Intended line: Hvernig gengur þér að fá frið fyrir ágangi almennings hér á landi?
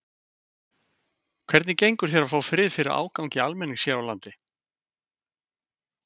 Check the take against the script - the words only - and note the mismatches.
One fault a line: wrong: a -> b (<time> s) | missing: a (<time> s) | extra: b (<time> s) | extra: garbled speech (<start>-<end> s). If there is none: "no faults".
no faults